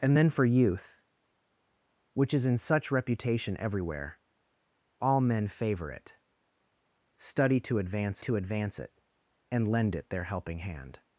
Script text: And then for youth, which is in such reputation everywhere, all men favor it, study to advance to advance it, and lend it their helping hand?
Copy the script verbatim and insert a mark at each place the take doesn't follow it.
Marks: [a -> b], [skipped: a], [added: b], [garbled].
And then for youth, which is in such reputation everywhere, all men favor it, study to advance to advance it, and lend it their helping hand?